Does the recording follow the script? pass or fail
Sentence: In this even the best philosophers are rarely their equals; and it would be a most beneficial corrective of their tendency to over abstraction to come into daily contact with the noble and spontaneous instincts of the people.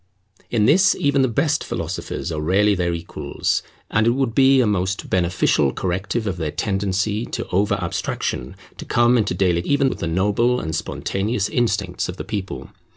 fail